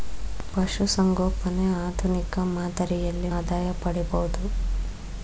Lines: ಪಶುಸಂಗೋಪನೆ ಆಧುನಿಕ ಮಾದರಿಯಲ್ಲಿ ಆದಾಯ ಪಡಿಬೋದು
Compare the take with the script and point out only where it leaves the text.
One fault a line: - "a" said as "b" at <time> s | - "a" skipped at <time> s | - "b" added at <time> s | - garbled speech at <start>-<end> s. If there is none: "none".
none